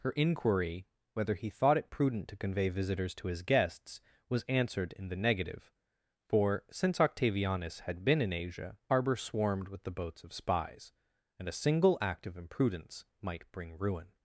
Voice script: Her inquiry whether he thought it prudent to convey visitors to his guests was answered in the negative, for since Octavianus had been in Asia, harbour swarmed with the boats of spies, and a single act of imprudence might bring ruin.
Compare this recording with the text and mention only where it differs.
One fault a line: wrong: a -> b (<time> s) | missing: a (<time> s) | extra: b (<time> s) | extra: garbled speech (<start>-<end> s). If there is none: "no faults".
no faults